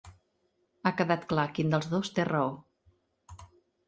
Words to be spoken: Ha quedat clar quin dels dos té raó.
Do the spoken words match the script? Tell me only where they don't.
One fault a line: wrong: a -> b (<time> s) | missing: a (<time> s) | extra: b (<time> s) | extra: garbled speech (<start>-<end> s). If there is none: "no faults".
no faults